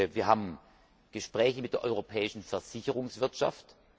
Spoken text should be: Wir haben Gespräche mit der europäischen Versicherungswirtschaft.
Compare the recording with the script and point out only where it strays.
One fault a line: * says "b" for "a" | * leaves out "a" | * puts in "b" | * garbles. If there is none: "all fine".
all fine